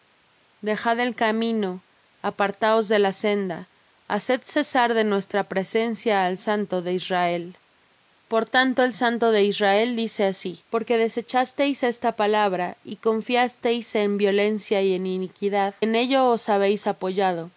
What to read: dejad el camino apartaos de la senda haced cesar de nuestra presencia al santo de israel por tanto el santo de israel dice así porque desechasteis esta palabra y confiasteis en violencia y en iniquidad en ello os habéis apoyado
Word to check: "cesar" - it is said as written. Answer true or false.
true